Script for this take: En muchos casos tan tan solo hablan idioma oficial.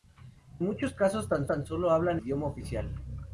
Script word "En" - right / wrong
right